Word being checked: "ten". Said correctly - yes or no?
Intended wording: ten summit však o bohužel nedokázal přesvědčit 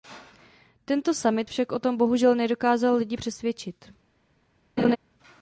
no